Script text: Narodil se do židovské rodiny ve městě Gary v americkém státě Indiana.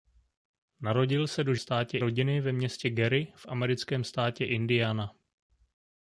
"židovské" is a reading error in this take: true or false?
true